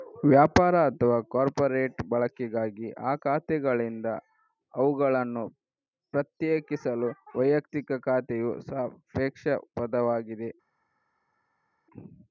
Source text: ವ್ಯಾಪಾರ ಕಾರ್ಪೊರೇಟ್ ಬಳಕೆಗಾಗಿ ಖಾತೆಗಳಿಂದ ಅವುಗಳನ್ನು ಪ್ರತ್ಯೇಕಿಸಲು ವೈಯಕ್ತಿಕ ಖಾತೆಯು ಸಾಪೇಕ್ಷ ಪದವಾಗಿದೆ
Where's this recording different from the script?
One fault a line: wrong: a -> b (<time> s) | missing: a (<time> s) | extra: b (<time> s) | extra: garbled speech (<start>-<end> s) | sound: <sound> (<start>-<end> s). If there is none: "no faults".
extra: ಅಥವಾ (0.9 s)
extra: ಆ (3.0 s)